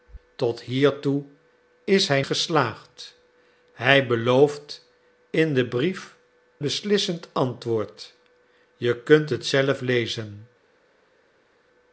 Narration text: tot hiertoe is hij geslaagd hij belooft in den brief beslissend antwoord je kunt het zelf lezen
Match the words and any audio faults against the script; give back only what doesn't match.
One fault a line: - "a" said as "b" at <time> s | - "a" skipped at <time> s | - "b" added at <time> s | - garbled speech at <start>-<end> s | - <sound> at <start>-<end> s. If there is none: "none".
none